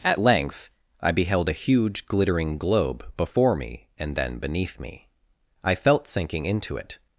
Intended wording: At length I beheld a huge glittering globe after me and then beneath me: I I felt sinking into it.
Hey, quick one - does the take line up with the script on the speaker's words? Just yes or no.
no